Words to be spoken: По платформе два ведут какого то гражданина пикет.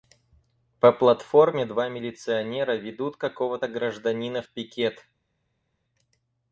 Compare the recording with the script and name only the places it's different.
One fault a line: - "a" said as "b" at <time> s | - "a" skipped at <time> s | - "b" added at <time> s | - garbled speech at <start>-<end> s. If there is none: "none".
- "милиционера" added at 1.9 s
- "в" added at 4.4 s